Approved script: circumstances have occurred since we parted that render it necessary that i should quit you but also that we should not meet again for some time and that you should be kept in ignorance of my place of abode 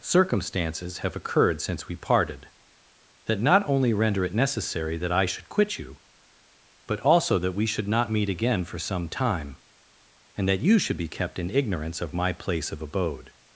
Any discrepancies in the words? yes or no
yes